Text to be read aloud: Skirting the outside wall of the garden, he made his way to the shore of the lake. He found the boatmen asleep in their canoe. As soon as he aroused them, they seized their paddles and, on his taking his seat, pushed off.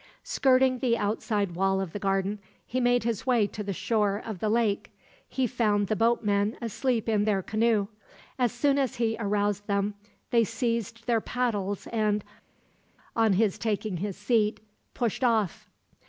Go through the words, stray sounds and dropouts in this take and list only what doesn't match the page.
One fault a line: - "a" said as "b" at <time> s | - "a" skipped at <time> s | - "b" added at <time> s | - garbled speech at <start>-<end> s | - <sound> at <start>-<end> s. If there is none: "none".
none